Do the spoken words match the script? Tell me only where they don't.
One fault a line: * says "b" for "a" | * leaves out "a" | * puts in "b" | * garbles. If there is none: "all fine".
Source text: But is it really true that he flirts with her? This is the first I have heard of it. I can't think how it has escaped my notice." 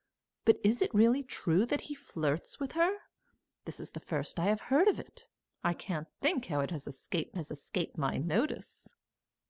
* puts in "has escaped"